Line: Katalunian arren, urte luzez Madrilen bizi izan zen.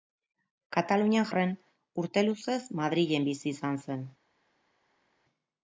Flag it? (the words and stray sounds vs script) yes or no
no